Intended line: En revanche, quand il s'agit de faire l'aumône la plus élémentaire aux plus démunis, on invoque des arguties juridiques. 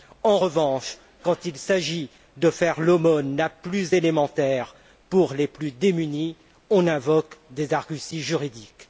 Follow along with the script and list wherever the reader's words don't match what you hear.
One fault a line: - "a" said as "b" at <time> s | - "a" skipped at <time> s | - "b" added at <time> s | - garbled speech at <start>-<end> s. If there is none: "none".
none